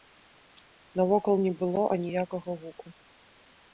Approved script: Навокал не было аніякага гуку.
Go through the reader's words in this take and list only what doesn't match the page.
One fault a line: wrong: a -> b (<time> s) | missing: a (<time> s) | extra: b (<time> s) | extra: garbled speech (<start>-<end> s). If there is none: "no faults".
no faults